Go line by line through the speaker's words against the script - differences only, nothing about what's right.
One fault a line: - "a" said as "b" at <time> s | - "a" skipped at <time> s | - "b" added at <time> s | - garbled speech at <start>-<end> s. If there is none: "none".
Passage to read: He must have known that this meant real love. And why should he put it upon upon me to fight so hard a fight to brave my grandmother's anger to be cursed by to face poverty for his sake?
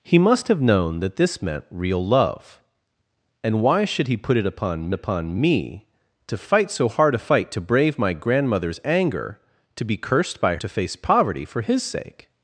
none